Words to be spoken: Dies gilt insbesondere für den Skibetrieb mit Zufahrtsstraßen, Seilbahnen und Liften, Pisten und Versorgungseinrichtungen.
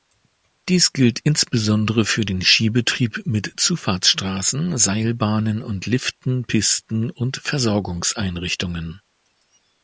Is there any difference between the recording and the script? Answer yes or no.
no